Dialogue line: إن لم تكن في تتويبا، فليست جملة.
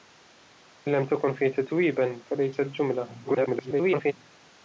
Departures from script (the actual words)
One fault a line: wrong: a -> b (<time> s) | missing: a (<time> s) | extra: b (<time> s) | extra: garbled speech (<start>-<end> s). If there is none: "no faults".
extra: garbled speech (3.2-4.1 s)